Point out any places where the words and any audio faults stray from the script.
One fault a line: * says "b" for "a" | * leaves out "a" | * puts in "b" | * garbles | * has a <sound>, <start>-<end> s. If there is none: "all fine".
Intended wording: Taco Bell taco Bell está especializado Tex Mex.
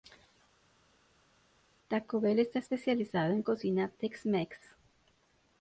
* says "está especializado en cocina" for "taco Bell está especializado"